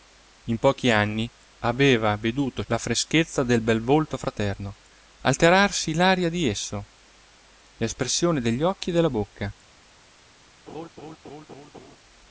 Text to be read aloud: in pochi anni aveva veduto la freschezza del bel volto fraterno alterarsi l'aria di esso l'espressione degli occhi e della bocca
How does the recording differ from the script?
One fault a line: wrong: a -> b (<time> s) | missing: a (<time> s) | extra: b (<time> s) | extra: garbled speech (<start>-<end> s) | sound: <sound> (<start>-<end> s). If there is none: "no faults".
sound: laugh (10.7-12.0 s)